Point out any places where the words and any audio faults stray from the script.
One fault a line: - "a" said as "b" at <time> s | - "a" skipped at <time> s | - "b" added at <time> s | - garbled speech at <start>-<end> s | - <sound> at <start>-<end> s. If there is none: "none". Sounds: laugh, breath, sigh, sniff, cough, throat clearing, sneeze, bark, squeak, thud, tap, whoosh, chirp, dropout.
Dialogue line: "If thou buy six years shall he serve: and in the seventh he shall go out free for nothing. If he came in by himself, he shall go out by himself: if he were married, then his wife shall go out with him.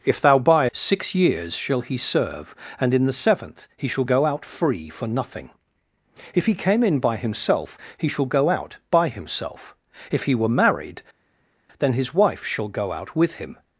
none